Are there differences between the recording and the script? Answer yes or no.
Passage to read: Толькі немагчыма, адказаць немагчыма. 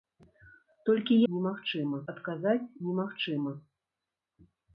no